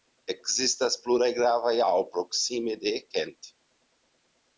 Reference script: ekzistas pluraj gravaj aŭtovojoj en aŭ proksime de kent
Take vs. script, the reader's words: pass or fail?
fail